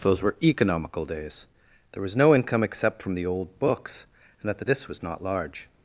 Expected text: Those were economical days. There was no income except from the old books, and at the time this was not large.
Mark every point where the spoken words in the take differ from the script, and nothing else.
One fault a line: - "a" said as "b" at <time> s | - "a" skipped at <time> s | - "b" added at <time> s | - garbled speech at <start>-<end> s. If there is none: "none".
- "time" skipped at 4.6 s